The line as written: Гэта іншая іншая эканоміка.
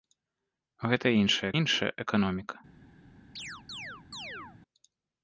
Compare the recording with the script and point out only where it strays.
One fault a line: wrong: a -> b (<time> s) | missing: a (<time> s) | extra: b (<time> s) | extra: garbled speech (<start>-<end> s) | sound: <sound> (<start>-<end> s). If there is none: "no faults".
sound: chirp (3.4-4.6 s)